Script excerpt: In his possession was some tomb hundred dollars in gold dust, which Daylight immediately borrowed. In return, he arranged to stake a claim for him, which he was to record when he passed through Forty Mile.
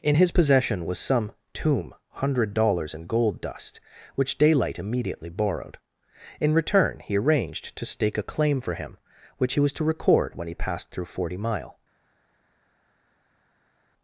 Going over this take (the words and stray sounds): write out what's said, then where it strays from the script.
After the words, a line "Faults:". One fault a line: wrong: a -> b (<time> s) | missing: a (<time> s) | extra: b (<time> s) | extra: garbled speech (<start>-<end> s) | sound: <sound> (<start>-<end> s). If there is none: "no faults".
In his possession was some tomb hundred dollars in gold dust, which Daylight immediately borrowed. In return, he arranged to stake a claim for him, which he was to record when he passed through Forty Mile.
Faults:
no faults